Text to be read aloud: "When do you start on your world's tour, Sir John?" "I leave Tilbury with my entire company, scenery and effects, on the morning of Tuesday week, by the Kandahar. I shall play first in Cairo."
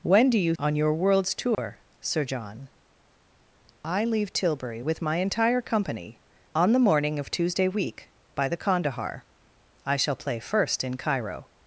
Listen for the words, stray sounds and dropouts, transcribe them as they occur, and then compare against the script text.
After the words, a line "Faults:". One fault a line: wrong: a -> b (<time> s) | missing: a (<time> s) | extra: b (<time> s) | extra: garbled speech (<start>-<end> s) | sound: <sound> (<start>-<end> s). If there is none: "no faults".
"When do you on your world's tour, Sir John?" "I leave Tilbury with my entire company, on the morning of Tuesday week, by the Kandahar. I shall play first in Cairo."
Faults:
missing: start (0.6 s)
sound: dropout (1.5-1.6 s)
missing: scenery and effects (6.2 s)